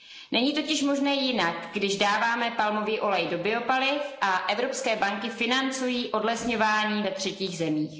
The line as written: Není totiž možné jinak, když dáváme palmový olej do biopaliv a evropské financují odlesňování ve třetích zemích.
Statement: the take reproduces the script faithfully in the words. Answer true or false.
false